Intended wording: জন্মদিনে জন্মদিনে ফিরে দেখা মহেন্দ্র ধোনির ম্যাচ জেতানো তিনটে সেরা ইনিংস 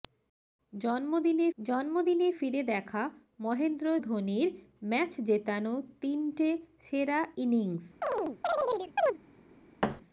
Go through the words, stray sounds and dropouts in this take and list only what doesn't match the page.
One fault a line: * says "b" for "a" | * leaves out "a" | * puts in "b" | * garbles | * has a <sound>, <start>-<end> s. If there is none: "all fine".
* has a chirp, 8.0-9.2 s
* has a thud, 9.8-10.0 s